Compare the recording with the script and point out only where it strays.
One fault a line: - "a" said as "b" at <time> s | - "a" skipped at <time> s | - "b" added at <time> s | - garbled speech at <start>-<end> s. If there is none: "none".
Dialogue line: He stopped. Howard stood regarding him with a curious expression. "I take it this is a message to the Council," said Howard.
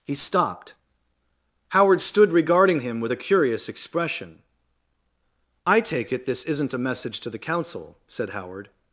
- "is" said as "isn't" at 6.4 s